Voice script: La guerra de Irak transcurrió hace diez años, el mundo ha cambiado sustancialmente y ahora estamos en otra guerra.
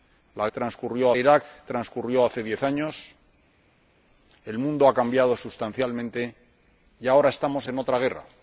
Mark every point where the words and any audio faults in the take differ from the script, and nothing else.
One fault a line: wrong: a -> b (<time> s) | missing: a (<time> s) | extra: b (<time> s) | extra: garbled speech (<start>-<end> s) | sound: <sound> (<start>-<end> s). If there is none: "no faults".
wrong: guerra -> transcurrió (0.5 s)